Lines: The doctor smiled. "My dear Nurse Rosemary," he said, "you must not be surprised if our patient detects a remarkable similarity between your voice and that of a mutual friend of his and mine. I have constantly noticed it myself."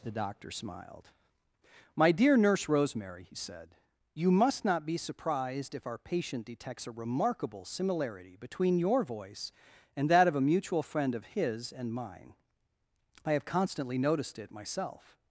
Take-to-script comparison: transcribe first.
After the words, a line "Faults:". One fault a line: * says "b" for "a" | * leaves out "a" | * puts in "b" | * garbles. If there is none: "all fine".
The doctor smiled. "My dear Nurse Rosemary," he said, "you must not be surprised if our patient detects a remarkable similarity between your voice and that of a mutual friend of his and mine. I have constantly noticed it myself."
Faults:
all fine